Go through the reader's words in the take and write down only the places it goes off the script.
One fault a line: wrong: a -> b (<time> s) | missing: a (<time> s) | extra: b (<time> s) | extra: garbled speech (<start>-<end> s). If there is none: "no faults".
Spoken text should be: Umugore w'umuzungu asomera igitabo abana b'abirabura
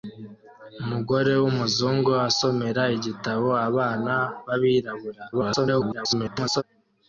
extra: garbled speech (5.3-6.6 s)